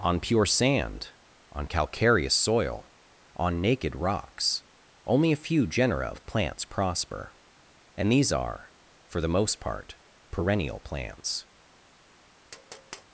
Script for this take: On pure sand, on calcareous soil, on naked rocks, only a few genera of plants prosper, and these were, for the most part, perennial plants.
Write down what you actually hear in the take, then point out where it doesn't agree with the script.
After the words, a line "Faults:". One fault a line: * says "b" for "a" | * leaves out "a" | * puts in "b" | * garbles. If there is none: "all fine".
On pure sand, on calcareous soil, on naked rocks, only a few genera of plants prosper, and these are, for the most part, perennial plants.
Faults:
* says "are" for "were"